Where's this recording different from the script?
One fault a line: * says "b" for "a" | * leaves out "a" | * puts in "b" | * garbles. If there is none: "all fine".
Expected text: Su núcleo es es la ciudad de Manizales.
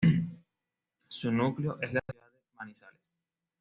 * leaves out "es"